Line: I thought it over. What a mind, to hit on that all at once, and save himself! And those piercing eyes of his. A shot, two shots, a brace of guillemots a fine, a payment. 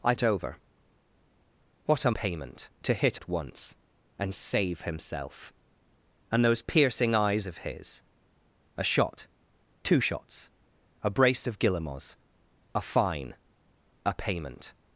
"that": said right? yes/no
no